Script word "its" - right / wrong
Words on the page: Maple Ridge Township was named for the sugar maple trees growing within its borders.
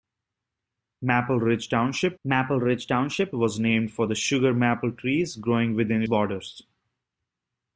wrong